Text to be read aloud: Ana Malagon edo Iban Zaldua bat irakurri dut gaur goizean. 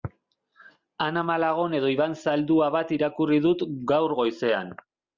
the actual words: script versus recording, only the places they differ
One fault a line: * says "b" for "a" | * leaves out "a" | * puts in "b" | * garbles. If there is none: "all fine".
all fine